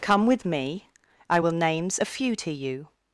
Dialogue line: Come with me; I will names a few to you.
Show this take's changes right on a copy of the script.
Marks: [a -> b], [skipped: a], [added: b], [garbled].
Come with me; I will names a few to you.